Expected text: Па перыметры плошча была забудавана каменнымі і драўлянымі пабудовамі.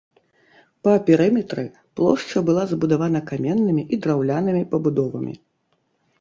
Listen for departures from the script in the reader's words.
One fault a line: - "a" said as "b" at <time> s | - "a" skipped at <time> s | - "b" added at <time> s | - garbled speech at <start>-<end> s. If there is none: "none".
none